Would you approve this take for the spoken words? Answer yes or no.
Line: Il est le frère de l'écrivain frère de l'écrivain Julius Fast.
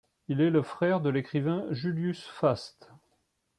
no